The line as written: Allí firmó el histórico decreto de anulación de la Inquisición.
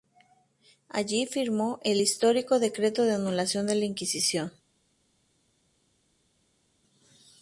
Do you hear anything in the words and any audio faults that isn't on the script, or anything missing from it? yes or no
no